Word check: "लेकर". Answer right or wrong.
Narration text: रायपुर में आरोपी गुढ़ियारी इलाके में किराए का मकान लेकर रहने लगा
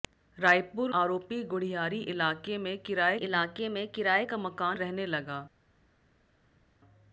wrong